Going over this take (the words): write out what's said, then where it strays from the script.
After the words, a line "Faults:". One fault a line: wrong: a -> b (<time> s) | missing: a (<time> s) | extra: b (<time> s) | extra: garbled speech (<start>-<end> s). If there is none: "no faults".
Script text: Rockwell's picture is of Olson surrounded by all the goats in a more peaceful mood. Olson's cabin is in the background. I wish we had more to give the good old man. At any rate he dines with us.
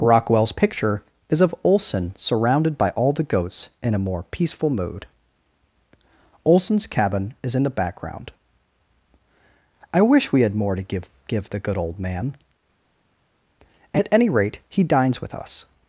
Rockwell's picture is of Olson surrounded by all the goats in a more peaceful mood. Olson's cabin is in the background. I wish we had more to give give the good old man. At any rate he dines with us.
Faults:
extra: give (11.3 s)